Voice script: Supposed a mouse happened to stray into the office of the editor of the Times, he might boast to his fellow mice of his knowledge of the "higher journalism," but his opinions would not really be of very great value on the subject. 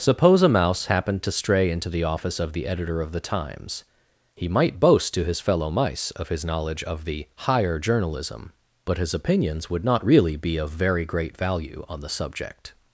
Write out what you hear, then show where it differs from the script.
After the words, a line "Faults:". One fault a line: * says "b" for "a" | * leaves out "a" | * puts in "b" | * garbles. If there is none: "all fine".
Suppose a mouse happened to stray into the office of the editor of the Times, he might boast to his fellow mice of his knowledge of the "higher journalism," but his opinions would not really be of very great value on the subject.
Faults:
* says "Suppose" for "Supposed"